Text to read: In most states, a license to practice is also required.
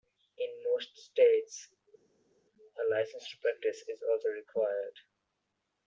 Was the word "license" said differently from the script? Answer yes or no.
no